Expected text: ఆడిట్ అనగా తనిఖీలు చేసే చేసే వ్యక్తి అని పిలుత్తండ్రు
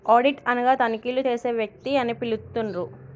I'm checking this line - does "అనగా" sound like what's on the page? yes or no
yes